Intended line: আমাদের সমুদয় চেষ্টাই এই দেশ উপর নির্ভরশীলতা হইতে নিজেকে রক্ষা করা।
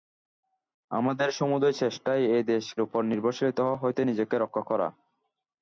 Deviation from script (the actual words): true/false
false